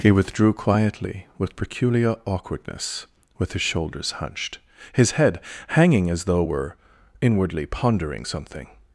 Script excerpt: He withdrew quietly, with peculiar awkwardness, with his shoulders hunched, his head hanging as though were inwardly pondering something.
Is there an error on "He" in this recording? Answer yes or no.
no